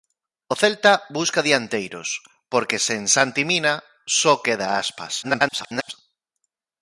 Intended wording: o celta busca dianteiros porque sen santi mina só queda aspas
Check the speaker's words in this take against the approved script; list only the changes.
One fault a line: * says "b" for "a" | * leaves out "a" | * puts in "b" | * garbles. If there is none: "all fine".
* garbles